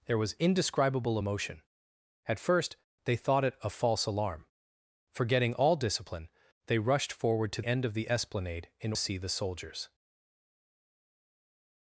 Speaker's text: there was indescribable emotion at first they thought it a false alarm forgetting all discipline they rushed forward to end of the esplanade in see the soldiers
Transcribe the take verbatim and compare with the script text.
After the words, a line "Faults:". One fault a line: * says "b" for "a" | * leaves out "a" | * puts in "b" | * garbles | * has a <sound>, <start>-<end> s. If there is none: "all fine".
there was indescribable emotion at first they thought it a false alarm forgetting all discipline they rushed forward to end of the esplanade in see the soldiers
Faults:
all fine